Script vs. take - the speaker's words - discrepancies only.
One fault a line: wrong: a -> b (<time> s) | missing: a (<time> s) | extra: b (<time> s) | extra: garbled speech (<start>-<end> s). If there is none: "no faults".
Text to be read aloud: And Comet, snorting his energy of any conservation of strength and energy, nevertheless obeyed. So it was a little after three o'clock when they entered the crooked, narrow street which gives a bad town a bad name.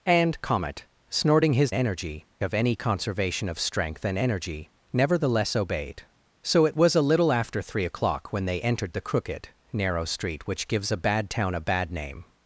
no faults